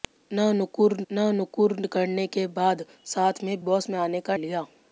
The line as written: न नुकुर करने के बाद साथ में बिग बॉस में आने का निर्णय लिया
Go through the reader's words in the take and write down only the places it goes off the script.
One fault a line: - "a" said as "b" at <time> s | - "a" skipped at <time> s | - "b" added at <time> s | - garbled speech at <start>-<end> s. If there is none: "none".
- "न नुकुर" added at 1.1 s
- "बिग" skipped at 3.6 s
- "निर्णय" skipped at 4.4 s